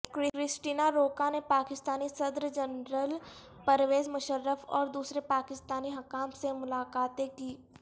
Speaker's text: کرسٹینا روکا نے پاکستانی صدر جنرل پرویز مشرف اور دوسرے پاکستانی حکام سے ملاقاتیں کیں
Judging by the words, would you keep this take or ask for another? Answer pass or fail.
pass